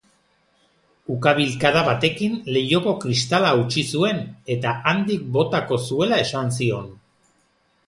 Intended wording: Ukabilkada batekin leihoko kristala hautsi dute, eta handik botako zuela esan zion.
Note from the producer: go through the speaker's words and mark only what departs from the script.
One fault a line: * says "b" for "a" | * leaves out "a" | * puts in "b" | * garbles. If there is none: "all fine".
* says "zuen" for "dute"